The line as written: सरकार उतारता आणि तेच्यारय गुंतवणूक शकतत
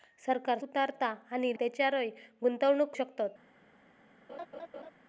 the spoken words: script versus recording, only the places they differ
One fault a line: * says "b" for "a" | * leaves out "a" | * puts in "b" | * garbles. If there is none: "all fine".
all fine